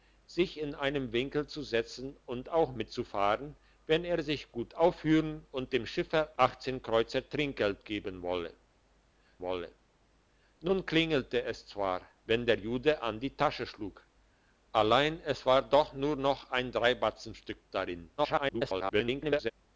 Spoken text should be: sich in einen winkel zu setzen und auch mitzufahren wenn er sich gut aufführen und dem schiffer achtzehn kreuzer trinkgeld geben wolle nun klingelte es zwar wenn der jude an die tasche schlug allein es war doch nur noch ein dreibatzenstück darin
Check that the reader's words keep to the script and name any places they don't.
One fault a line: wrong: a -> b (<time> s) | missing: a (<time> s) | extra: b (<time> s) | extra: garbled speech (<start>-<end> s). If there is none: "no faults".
extra: wolle (9.4 s)
extra: garbled speech (18.2-19.5 s)